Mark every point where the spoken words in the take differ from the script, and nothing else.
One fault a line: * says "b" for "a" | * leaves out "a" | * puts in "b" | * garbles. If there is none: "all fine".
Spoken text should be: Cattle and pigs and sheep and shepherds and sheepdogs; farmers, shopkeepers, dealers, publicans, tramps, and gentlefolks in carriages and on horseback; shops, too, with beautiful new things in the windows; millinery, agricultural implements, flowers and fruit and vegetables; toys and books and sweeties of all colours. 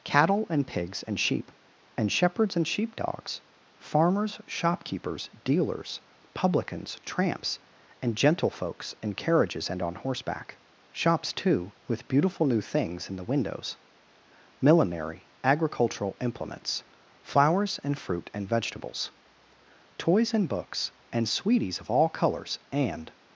* puts in "And"